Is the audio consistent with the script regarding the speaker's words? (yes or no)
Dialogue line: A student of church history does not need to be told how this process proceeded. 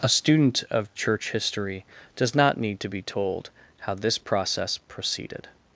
yes